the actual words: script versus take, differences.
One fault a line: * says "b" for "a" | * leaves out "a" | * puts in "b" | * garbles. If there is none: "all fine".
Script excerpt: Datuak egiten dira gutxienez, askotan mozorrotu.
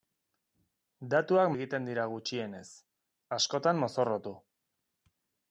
all fine